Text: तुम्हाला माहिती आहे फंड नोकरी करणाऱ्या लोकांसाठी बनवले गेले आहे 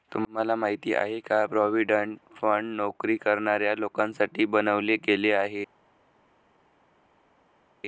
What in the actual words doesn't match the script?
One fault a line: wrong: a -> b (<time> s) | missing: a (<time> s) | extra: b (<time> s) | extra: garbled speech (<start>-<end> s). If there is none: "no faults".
extra: का प्रॉव्हिडंट (1.2 s)